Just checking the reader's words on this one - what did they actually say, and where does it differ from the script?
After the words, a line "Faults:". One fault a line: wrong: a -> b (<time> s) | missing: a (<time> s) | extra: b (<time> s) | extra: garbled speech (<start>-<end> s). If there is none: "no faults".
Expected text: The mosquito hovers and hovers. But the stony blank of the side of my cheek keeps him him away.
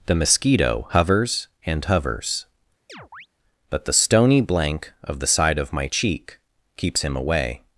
The mosquito hovers and hovers. But the stony blank of the side of my cheek keeps him away.
Faults:
missing: him (7.2 s)